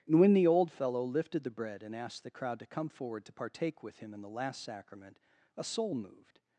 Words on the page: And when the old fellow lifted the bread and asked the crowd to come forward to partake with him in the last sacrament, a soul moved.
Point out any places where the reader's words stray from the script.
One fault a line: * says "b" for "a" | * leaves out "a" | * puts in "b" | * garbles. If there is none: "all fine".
all fine